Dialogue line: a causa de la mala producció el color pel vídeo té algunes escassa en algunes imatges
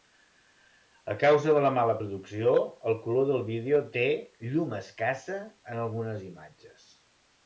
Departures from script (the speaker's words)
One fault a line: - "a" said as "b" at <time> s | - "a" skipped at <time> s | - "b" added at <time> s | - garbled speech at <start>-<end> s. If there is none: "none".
- "pel" said as "del" at 3.3 s
- "algunes" said as "llum" at 4.5 s